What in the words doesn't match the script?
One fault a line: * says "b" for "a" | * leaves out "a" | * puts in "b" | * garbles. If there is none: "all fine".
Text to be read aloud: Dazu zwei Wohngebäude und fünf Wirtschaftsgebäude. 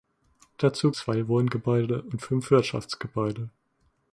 all fine